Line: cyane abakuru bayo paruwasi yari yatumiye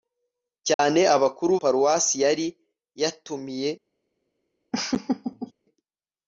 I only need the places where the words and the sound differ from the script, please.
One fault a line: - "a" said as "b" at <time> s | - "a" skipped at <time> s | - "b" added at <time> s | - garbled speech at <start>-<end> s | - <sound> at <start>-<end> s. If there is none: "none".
- dropout at 0.7-0.8 s
- "bayo" skipped at 1.5 s
- laugh at 4.7-5.5 s